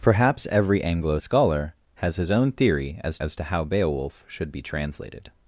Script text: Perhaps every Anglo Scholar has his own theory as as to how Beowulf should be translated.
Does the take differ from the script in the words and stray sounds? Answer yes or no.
no